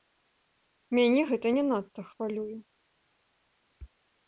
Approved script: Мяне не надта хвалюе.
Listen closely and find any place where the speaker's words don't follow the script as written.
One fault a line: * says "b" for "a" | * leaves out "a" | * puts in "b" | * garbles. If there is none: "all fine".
* puts in "гэта"